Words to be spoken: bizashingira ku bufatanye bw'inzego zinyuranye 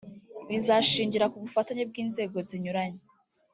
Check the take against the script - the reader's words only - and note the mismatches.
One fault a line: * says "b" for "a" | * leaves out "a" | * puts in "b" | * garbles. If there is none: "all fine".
all fine